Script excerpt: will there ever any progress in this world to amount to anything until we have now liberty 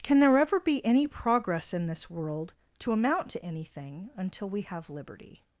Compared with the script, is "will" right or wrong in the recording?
wrong